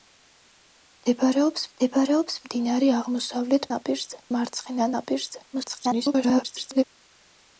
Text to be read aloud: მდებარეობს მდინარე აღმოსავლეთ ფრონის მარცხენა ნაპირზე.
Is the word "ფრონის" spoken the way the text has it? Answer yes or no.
no